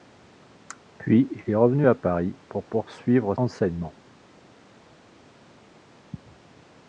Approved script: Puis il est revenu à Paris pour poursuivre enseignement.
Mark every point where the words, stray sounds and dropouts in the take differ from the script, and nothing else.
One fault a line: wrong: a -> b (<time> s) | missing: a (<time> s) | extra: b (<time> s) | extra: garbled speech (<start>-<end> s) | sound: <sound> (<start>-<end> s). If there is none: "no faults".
no faults